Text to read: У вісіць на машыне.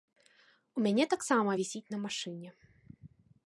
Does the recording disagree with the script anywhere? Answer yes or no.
yes